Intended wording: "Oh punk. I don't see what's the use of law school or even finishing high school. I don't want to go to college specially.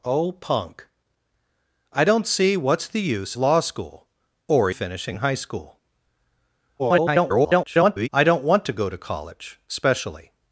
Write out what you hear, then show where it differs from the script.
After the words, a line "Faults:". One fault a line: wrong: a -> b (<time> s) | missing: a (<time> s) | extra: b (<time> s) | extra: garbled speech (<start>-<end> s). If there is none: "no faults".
"Oh punk. I don't see what's the use law school or finishing high school. [garbled] I don't want to go to college specially.
Faults:
missing: of (3.4 s)
missing: even (4.7 s)
extra: garbled speech (6.8-8.1 s)